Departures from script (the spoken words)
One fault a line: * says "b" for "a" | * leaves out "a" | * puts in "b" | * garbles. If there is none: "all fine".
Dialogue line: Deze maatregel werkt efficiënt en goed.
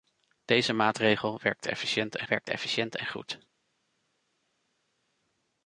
* puts in "werkt efficiënt en"